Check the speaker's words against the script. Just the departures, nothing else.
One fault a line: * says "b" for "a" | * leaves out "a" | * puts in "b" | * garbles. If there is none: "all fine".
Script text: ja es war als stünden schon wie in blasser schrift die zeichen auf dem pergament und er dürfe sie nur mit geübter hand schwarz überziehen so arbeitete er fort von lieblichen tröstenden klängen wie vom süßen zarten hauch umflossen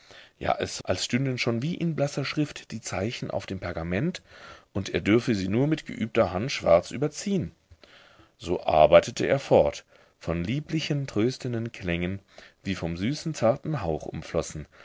* leaves out "war"